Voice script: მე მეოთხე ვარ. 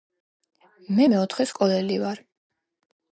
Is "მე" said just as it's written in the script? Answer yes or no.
yes